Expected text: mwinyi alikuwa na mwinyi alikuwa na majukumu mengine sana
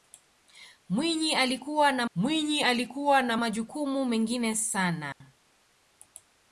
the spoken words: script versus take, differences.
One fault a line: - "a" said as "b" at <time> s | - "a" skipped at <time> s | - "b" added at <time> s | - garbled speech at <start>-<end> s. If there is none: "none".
none